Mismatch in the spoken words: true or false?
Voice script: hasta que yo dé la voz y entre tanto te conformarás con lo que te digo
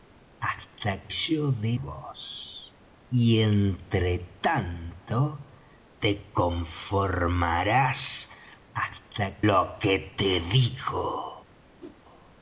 true